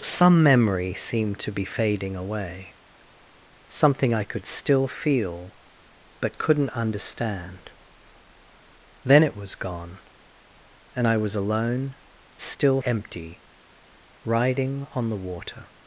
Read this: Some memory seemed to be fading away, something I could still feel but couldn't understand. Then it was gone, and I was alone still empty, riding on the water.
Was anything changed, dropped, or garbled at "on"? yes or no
no